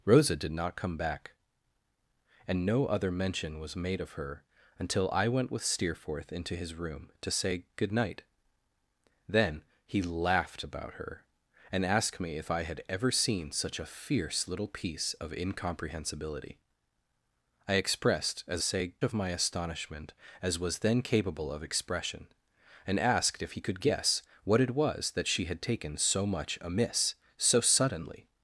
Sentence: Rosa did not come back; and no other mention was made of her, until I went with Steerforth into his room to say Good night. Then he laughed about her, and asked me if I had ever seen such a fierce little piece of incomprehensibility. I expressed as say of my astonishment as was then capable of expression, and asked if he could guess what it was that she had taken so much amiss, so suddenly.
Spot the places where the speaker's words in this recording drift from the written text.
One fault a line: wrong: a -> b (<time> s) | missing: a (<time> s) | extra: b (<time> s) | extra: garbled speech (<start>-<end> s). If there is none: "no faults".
no faults